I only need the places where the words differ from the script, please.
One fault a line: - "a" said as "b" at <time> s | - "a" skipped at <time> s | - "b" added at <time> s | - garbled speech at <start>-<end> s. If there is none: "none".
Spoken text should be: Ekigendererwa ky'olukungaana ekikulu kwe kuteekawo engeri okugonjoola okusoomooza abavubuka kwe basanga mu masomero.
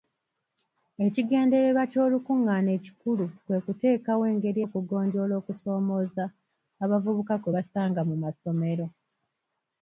none